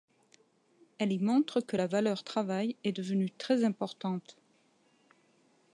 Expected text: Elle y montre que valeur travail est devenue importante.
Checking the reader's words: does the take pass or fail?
fail